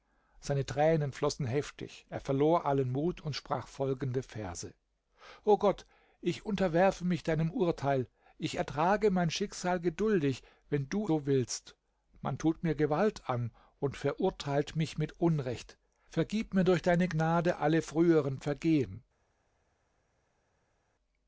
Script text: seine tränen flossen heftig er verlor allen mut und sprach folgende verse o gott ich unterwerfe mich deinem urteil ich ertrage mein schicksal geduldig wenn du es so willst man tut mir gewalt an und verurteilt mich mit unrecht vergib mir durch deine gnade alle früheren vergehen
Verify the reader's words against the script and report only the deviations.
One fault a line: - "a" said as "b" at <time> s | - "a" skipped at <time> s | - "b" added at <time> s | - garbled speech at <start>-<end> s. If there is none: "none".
- "es" skipped at 11.1 s